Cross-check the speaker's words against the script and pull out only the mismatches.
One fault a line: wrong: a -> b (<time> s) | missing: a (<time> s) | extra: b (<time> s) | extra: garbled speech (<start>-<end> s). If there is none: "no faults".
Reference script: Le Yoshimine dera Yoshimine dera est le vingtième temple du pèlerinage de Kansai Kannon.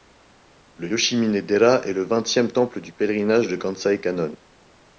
missing: Yoshimine dera (1.8 s)